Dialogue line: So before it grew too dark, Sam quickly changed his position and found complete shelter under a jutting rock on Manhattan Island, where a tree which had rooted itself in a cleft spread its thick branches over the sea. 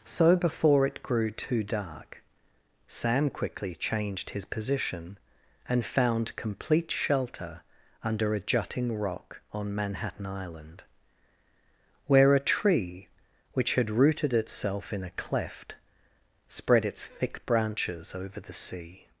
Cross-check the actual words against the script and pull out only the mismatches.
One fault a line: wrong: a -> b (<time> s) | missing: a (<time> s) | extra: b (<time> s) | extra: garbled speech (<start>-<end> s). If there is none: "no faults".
no faults